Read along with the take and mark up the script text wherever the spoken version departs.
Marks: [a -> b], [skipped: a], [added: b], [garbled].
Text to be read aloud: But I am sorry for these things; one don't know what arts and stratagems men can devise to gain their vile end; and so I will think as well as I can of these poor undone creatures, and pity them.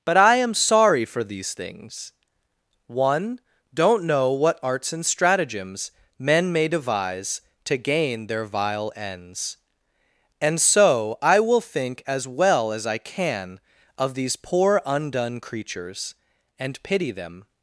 But I am sorry for these things; one don't know what arts and stratagems men [can -> may] devise to gain their vile [end; -> ends] and so I will think as well as I can of these poor undone creatures, and pity them.